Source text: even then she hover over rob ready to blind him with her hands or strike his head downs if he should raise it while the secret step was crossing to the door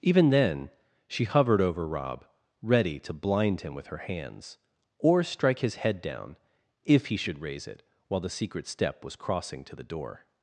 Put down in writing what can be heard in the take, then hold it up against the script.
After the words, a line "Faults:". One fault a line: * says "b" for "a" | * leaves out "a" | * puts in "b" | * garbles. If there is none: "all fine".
even then she hovered over rob ready to blind him with her hands or strike his head down if he should raise it while the secret step was crossing to the door
Faults:
* says "hovered" for "hover"
* says "down" for "downs"